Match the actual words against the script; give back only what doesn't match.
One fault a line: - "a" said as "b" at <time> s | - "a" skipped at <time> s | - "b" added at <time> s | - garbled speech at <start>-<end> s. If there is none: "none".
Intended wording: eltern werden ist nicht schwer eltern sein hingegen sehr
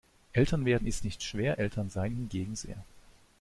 none